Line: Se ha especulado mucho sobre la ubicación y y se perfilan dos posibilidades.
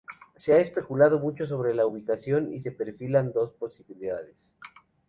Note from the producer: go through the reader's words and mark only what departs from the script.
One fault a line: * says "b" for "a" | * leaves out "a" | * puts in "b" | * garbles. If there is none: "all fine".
* leaves out "y"